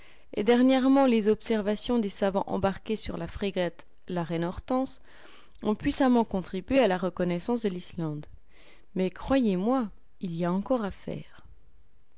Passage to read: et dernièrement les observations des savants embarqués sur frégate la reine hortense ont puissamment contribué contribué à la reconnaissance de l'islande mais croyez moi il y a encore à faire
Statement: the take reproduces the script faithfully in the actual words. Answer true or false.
false